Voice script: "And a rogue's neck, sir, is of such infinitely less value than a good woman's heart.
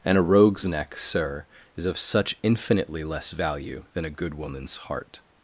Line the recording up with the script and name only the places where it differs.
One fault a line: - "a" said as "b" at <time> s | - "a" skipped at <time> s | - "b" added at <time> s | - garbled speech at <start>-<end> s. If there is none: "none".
none